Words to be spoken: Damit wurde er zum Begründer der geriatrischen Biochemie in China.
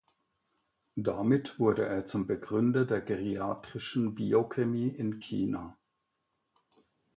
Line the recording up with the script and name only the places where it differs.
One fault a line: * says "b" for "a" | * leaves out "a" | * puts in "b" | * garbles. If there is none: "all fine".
all fine